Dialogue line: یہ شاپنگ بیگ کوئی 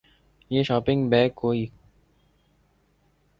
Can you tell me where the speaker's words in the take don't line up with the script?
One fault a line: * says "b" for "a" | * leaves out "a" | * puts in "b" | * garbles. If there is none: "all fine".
all fine